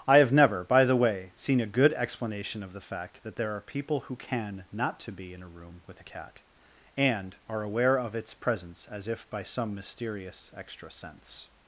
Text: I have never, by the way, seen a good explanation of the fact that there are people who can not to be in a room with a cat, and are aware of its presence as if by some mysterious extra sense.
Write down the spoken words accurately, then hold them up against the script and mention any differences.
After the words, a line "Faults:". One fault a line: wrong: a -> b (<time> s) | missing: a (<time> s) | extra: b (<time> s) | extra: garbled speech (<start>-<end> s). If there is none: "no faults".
I have never, by the way, seen a good explanation of the fact that there are people who can not to be in a room with a cat, and are aware of its presence as if by some mysterious extra sense.
Faults:
no faults